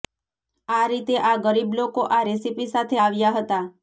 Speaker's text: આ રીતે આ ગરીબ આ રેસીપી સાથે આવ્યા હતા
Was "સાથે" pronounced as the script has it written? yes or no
yes